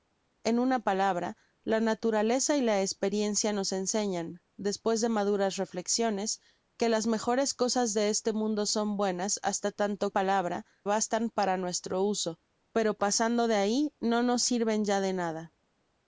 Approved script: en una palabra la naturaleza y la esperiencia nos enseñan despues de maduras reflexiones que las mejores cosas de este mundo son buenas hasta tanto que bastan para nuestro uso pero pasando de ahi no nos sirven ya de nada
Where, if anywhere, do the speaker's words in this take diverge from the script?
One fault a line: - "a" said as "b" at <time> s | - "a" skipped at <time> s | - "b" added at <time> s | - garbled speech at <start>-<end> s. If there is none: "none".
- "que" said as "palabra" at 10.1 s